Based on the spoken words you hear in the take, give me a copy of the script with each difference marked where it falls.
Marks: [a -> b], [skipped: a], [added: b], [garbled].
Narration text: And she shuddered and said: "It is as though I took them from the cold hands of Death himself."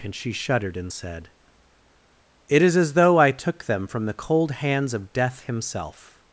And she shuddered and said: "It is as though I took them from the cold hands of Death himself."